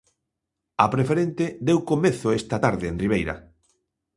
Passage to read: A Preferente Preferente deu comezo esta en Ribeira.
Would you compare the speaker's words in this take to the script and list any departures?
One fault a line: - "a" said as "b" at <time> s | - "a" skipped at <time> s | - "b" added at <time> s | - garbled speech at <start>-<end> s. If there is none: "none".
- "Preferente" skipped at 1.4 s
- "tarde" added at 2.6 s